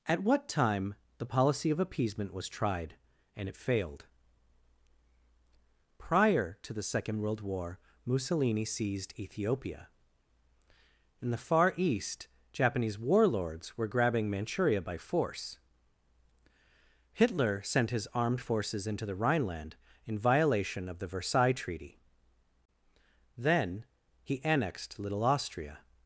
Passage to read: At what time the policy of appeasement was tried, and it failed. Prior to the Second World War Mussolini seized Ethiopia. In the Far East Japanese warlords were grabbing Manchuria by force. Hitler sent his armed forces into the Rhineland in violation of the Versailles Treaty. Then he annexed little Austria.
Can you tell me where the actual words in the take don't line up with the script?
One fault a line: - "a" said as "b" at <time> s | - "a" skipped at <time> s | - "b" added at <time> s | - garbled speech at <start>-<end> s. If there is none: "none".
none